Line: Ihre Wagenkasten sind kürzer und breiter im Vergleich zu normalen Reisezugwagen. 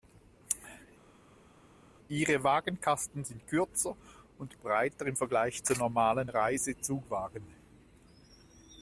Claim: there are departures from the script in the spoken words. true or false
false